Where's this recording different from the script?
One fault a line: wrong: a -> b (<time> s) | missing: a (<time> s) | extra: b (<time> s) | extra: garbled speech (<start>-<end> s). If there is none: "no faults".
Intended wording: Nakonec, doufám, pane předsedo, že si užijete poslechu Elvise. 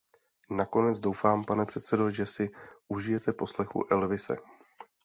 no faults